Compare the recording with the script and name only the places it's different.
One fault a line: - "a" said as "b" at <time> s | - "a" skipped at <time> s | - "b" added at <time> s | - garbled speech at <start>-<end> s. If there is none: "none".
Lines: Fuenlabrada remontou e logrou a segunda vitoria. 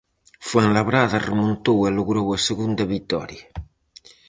none